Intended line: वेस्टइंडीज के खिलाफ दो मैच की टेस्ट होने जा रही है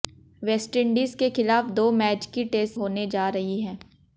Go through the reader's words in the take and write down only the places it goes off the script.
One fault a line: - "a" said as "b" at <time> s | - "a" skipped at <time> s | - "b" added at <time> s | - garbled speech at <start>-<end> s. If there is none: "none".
none